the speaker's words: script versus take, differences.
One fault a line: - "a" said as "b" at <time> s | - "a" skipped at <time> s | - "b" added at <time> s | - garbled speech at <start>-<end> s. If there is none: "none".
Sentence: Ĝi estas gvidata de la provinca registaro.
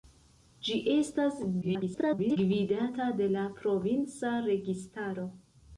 - garbled speech at 1.6-2.4 s